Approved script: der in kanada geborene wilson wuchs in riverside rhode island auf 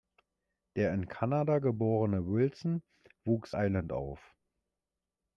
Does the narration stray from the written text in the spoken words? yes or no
yes